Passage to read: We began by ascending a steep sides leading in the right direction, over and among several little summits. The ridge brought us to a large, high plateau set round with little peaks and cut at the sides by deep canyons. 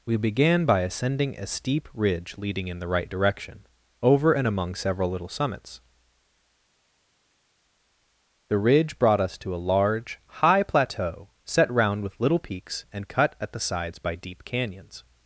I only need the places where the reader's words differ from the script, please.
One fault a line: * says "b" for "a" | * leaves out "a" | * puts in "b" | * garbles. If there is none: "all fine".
* says "ridge" for "sides"